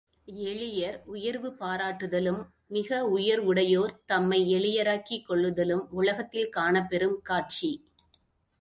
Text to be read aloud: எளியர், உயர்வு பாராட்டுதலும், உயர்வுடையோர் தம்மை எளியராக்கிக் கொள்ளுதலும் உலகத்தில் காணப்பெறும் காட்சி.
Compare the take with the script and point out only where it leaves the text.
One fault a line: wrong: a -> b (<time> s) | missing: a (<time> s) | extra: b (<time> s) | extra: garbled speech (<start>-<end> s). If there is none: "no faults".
extra: மிக (2.7 s)